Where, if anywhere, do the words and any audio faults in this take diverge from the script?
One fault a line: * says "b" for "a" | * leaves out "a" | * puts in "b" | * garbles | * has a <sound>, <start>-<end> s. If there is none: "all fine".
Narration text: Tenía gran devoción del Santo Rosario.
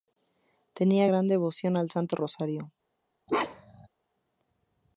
* says "al" for "del"
* has a bark, 3.3-3.9 s